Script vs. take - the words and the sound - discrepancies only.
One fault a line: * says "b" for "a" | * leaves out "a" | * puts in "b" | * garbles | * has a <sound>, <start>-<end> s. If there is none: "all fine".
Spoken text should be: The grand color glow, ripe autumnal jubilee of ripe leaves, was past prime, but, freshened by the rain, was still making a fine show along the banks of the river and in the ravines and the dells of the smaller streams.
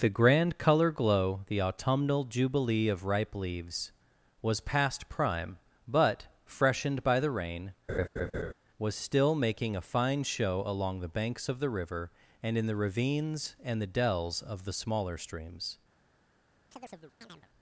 * says "the" for "ripe"
* has a laugh, 7.9-8.5 s
* has a chirp, 16.7-17.5 s